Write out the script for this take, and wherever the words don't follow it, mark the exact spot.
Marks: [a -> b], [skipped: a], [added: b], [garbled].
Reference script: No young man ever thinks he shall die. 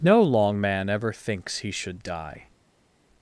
No [young -> long] man ever thinks he [shall -> should] die.